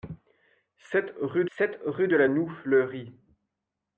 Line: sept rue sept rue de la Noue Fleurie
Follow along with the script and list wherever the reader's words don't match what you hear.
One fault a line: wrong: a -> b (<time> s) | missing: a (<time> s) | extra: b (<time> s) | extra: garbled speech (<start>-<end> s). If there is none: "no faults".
no faults